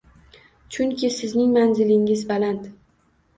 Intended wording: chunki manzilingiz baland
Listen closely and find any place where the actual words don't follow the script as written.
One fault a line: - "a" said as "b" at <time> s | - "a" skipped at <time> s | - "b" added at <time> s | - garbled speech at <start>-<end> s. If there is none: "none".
- "sizning" added at 1.2 s